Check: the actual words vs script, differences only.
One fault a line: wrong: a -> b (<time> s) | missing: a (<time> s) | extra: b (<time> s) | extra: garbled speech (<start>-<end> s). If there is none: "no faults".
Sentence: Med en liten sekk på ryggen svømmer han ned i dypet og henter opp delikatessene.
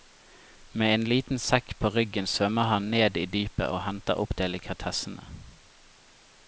no faults